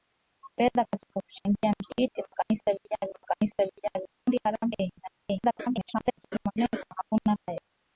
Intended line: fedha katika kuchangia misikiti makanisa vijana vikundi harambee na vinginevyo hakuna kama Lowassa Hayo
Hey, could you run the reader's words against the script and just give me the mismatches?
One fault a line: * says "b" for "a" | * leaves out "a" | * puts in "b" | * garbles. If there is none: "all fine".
* puts in "makanisa vijana"
* garbles
* leaves out "kama Lowassa"